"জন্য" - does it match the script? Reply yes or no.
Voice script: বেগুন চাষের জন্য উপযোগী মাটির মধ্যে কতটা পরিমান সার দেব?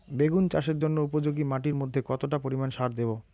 yes